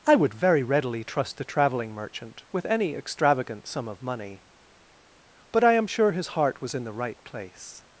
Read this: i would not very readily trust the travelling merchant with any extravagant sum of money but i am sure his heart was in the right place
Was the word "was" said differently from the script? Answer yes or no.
no